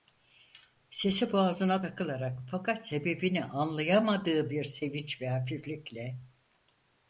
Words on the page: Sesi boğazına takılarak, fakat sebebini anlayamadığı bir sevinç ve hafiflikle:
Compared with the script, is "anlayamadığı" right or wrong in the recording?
right